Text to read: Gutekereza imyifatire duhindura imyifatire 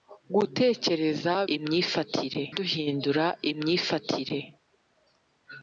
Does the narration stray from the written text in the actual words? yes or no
no